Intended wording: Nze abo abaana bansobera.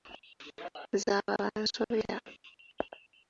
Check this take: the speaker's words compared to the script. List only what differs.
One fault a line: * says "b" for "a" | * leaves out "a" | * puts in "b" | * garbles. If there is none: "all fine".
* leaves out "abaana"